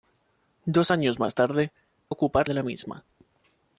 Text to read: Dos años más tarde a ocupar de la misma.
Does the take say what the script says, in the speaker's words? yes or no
yes